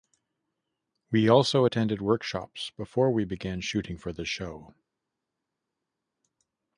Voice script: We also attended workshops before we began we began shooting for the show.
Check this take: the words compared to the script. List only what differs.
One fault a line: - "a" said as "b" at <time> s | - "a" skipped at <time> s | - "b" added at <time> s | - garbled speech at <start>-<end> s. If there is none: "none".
- "we began" skipped at 3.6 s